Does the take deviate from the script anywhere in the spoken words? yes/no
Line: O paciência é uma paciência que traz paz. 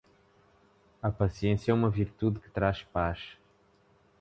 yes